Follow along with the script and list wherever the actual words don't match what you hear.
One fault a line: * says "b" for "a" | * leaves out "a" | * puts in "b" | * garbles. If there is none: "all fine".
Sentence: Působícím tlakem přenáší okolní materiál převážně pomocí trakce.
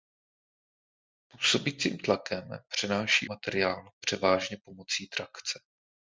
* leaves out "okolní"